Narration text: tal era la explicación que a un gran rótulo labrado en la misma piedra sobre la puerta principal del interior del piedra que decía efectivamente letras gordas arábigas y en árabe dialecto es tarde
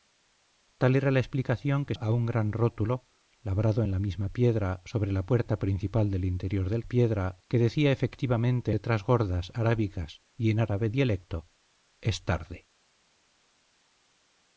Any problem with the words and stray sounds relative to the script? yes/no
no